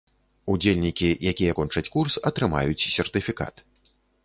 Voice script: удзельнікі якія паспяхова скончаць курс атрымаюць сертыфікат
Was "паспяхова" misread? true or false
true